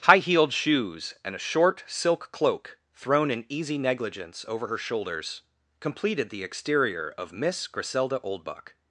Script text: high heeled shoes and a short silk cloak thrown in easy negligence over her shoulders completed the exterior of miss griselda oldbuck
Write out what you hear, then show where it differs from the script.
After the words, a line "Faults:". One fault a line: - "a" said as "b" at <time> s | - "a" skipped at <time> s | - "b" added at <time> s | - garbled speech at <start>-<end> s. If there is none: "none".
high heeled shoes and a short silk cloak thrown in easy negligence over her shoulders completed the exterior of miss griselda oldbuck
Faults:
none